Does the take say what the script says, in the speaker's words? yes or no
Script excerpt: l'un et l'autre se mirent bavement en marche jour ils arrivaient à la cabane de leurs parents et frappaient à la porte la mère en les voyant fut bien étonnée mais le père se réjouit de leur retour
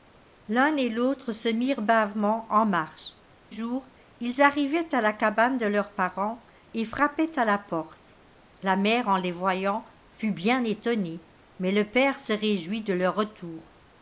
yes